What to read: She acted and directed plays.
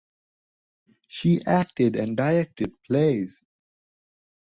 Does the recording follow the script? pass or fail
pass